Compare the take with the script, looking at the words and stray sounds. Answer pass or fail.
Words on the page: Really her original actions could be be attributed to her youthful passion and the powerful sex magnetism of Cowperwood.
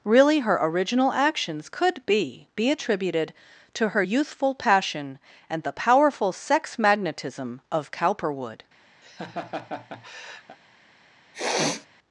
fail